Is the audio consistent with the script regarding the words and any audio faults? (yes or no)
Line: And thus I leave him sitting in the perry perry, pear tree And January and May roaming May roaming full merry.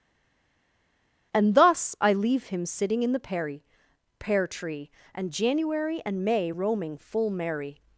no